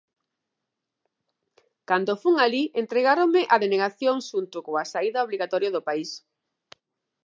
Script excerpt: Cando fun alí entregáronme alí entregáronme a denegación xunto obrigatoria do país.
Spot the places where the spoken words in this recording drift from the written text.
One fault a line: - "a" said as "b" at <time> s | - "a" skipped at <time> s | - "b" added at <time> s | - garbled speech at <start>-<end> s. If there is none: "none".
- "alí entregáronme" skipped at 3.4 s
- "coa saída" added at 4.6 s